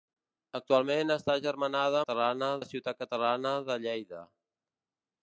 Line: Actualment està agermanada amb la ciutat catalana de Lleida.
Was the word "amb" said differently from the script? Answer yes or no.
yes